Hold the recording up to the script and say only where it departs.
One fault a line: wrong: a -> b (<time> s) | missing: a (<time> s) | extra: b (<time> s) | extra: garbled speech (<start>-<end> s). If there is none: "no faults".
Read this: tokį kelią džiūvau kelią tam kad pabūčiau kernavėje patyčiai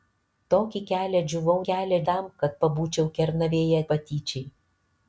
no faults